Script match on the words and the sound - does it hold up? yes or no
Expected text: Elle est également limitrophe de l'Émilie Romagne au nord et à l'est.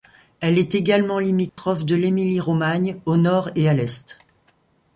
no